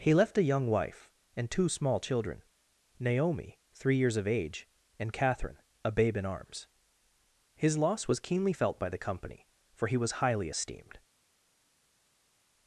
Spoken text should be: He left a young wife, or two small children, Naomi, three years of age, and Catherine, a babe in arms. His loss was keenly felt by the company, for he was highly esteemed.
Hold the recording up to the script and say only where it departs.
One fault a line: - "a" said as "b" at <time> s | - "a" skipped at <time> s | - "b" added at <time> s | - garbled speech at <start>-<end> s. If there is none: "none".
- "or" said as "and" at 1.4 s